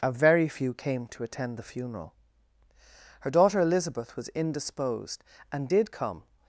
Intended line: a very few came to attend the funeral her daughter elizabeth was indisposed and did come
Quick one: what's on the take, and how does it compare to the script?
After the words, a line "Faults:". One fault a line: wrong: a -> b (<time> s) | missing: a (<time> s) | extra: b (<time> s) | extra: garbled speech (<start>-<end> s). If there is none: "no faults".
a very few came to attend the funeral her daughter elizabeth was indisposed and did come
Faults:
no faults